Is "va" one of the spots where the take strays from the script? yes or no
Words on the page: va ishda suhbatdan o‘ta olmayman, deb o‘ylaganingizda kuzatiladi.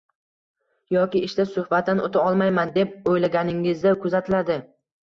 yes